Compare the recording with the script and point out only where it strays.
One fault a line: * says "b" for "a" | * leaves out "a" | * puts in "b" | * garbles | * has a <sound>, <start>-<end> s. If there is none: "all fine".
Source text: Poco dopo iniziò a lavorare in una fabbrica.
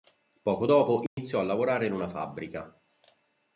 * has a dropout, 1.1-1.2 s